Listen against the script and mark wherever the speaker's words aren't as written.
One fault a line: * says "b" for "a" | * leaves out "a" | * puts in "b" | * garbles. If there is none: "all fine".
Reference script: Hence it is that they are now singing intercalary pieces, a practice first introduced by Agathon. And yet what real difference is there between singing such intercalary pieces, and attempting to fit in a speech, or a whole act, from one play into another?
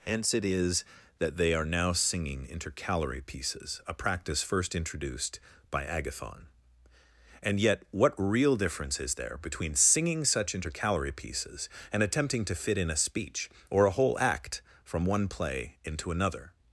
all fine